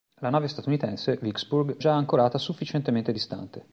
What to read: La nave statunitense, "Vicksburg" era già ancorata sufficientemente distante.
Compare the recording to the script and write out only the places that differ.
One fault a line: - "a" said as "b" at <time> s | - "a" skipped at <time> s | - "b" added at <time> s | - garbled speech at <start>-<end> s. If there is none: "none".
- "era" skipped at 1.8 s